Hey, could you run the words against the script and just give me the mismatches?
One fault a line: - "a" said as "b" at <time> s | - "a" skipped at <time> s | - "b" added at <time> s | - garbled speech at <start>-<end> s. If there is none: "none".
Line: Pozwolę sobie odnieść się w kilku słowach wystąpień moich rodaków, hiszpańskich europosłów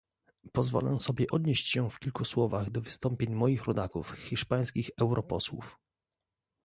- "do" added at 2.7 s